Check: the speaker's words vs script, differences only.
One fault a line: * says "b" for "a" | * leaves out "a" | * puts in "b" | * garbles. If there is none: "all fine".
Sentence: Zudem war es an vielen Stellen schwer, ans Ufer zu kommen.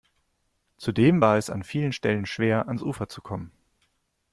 all fine